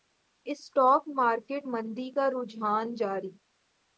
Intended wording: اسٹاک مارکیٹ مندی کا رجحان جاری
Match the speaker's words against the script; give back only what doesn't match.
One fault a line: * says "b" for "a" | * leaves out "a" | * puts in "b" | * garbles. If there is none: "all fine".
all fine